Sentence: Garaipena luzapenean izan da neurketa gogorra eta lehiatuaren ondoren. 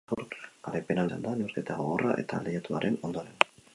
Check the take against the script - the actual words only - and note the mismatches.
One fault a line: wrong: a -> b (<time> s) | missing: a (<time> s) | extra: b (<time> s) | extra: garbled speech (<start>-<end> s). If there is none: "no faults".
missing: luzapenean (1.0 s)